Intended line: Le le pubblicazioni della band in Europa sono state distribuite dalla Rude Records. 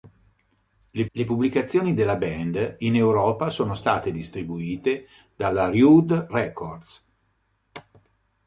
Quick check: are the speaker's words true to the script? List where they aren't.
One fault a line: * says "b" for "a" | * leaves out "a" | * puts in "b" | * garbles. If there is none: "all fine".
all fine